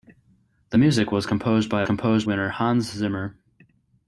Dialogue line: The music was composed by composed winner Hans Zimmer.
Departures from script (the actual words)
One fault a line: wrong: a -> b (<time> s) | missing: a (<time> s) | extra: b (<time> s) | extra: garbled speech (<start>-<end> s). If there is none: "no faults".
no faults